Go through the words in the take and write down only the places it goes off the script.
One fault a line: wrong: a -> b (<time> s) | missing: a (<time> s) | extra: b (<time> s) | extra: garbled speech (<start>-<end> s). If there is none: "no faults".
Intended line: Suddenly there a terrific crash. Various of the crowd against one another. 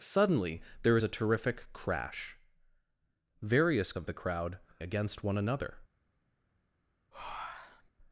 no faults